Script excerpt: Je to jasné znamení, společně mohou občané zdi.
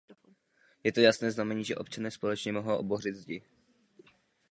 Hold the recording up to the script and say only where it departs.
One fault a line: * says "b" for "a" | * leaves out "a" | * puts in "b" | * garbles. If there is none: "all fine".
* puts in "že občané"
* says "bořit" for "občané"